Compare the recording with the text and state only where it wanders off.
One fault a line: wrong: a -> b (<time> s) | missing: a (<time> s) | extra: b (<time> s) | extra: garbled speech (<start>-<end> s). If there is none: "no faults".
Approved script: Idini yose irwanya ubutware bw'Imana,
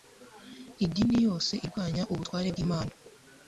no faults